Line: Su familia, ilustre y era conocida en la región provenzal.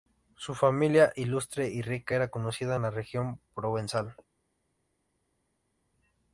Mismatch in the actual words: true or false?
true